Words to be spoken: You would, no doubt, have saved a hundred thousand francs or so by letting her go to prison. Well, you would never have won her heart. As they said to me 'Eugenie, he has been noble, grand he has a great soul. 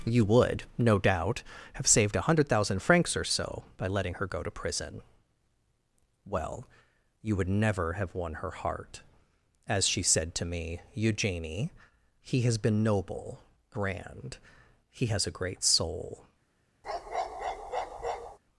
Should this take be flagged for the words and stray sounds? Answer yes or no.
yes